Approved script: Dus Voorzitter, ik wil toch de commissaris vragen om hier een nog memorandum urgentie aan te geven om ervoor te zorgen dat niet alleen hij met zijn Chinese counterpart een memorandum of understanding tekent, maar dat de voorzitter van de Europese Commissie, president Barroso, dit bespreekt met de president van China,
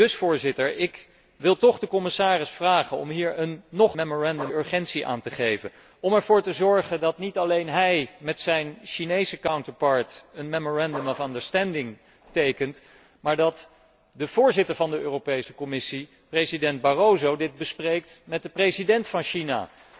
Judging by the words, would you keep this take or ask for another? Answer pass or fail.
pass